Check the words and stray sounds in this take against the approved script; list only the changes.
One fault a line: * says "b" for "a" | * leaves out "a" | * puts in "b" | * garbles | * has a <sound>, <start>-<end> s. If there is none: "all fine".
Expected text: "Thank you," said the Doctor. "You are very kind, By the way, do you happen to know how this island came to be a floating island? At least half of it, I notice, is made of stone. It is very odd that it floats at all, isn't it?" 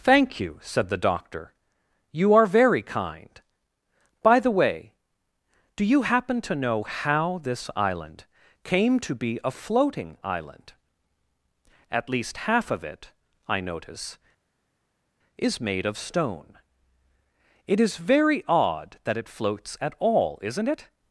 all fine